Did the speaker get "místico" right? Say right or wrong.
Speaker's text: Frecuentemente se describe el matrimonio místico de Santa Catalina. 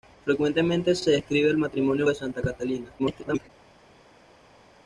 wrong